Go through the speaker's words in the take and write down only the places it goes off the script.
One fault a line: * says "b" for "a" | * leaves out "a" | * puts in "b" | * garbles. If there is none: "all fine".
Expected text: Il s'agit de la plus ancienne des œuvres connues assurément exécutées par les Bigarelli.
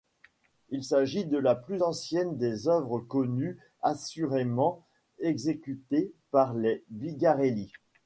all fine